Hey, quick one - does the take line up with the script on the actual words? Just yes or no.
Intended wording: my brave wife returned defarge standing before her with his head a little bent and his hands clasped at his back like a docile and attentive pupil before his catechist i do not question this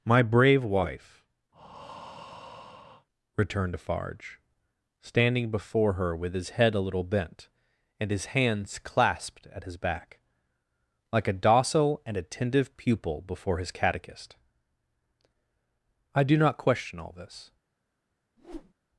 no